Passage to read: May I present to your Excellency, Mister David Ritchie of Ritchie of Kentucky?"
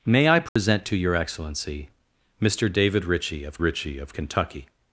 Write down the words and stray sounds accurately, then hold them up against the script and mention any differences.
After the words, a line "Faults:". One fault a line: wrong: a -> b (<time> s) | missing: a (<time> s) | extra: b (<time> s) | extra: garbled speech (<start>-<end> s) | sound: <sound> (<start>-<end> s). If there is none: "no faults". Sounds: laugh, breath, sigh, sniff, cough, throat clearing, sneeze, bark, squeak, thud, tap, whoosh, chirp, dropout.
May I present to your Excellency, Mister David Ritchie of Ritchie of Kentucky?"
Faults:
sound: dropout (0.5-0.6 s)